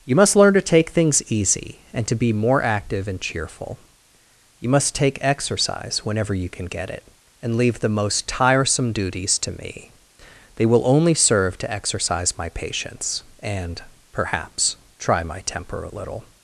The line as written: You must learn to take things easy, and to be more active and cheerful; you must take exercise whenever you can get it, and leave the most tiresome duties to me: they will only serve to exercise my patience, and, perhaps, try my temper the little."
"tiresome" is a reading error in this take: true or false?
false